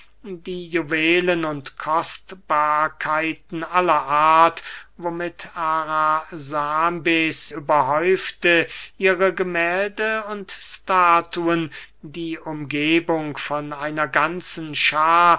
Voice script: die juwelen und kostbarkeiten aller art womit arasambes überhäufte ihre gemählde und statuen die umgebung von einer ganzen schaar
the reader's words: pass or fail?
pass